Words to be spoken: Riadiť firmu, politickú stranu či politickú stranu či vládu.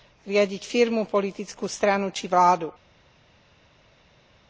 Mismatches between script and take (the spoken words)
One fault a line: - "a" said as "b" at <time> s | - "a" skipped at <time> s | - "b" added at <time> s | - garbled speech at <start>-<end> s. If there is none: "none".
- "politickú stranu či" skipped at 2.3 s